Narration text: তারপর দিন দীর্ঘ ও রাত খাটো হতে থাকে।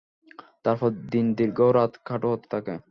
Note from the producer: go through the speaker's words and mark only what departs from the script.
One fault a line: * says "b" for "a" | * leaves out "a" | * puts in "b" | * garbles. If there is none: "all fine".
all fine